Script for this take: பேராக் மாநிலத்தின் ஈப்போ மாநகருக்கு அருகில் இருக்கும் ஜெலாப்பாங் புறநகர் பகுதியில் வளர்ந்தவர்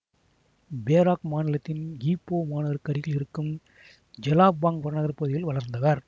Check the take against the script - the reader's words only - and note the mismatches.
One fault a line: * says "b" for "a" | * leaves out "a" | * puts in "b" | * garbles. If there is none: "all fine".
all fine